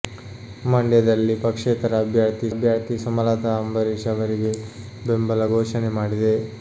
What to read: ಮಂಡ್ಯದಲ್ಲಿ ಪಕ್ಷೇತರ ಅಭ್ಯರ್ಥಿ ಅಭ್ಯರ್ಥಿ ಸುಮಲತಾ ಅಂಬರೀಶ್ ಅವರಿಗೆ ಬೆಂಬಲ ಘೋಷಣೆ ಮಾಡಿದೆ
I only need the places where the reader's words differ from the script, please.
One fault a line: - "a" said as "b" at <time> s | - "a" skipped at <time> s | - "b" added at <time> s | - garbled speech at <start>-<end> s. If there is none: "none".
none